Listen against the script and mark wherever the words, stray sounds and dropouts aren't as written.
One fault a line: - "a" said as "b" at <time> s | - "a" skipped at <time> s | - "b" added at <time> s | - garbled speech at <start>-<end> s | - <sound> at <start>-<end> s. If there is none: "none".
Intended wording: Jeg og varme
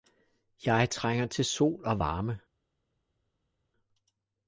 - "trænger til sol" added at 0.9 s